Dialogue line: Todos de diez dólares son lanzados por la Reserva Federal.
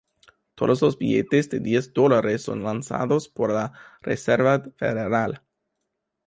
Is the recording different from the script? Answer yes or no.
yes